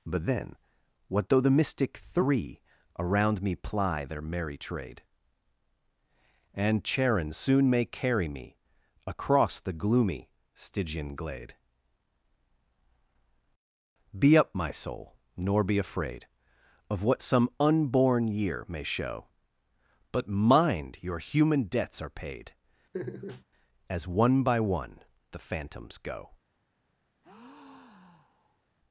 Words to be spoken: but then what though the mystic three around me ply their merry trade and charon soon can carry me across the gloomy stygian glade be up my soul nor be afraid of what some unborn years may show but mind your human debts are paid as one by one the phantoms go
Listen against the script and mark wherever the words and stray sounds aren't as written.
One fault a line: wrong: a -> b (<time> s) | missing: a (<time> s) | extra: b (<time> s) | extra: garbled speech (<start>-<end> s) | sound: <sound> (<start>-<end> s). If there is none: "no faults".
wrong: can -> may (7.7 s)
wrong: years -> year (18.3 s)
sound: laugh (22.9-23.4 s)
sound: breath (27.2-28.6 s)